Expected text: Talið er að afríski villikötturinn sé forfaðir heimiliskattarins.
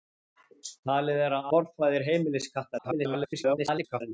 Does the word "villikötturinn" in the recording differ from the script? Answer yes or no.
yes